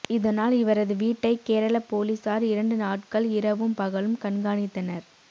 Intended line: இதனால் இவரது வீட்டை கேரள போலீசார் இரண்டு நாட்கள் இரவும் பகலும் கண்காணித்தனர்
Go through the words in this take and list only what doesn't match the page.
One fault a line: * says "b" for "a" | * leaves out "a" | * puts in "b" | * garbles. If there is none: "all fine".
all fine